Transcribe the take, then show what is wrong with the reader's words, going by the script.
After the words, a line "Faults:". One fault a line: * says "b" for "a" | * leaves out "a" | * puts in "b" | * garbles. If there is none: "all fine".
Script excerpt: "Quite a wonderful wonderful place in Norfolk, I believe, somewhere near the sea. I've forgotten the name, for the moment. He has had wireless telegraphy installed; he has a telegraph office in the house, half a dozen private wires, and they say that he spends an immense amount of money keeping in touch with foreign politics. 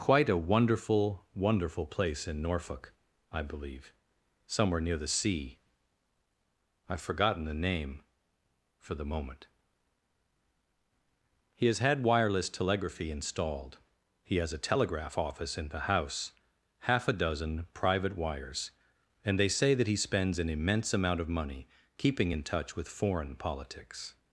"Quite a wonderful wonderful place in Norfolk, I believe, somewhere near the sea. I've forgotten the name, for the moment. He has had wireless telegraphy installed; he has a telegraph office in the house, half a dozen private wires, and they say that he spends an immense amount of money keeping in touch with foreign politics.
Faults:
all fine